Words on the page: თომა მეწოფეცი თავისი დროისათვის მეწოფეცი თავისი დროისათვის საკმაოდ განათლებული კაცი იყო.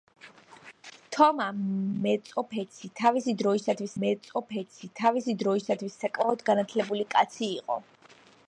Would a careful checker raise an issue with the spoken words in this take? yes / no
no